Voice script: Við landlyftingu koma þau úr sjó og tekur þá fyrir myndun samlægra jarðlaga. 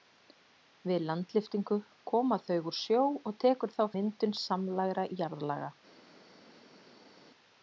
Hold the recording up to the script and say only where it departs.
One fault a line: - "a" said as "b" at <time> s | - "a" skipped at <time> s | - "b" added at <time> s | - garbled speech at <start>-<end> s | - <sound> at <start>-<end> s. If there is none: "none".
- "fyrir" skipped at 3.8 s